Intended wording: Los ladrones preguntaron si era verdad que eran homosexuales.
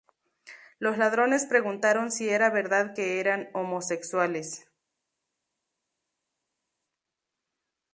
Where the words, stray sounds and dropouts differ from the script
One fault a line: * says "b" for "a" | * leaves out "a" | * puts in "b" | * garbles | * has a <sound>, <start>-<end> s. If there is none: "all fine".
all fine